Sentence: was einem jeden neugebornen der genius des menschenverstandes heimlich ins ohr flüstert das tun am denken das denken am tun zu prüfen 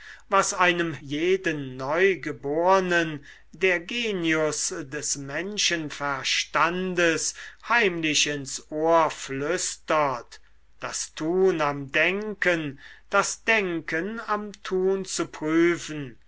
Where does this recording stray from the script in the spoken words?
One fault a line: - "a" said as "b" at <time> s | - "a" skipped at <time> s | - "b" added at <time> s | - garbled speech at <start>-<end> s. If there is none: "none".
none